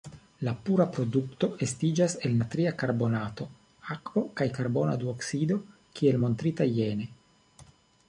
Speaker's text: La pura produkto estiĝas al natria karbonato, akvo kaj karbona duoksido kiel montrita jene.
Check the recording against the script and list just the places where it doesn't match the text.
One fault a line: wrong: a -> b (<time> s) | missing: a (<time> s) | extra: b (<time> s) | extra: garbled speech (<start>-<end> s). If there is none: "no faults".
wrong: al -> el (2.3 s)